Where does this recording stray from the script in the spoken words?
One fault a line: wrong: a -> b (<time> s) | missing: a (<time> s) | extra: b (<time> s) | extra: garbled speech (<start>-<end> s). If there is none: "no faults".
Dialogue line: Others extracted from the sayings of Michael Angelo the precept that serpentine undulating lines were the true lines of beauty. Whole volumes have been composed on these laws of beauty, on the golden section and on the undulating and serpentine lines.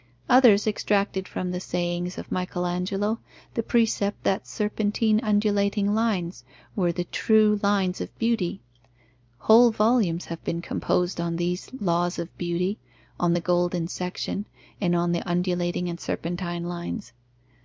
no faults